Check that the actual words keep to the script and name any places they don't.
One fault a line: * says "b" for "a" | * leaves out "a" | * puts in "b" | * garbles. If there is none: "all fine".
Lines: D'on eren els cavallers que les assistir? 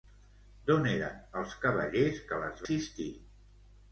all fine